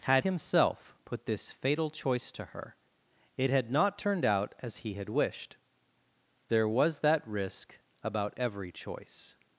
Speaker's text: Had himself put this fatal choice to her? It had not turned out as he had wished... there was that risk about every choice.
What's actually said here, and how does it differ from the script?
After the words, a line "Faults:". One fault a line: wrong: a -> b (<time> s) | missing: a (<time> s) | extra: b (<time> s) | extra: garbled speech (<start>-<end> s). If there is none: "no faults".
Had himself put this fatal choice to her? It had not turned out as he had wished... there was that risk about every choice.
Faults:
no faults